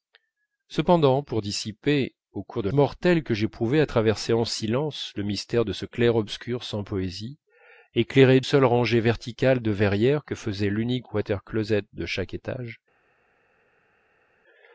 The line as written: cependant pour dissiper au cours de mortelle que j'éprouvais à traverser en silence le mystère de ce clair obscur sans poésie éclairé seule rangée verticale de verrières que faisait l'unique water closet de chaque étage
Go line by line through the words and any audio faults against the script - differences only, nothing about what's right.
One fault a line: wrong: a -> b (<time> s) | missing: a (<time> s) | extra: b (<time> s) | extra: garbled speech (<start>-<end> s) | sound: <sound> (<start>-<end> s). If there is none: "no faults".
no faults